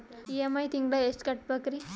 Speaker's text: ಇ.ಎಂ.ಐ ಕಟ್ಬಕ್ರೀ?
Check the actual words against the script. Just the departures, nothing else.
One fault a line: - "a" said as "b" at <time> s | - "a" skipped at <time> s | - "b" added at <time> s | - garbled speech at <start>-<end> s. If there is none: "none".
- "ತಿಂಗಳ ಎಷ್ಟು" added at 0.7 s